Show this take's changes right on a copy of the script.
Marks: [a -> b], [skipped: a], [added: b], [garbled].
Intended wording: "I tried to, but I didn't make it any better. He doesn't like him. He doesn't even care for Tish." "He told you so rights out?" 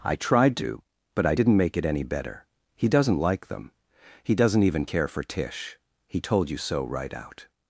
"I tried to, but I didn't make it any better. He doesn't like [him. -> them] He doesn't even care for Tish." "He told you so [rights -> right] out?"